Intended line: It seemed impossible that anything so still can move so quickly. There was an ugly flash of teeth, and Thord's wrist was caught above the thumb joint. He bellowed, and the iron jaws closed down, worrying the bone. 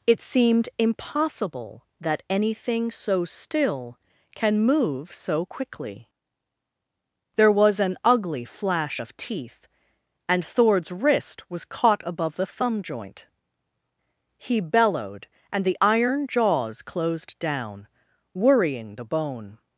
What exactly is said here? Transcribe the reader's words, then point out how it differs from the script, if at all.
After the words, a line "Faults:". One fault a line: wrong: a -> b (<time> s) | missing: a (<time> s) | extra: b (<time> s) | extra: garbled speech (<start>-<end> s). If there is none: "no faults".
It seemed impossible that anything so still can move so quickly. There was an ugly flash of teeth, and Thord's wrist was caught above the thumb joint. He bellowed, and the iron jaws closed down, worrying the bone.
Faults:
no faults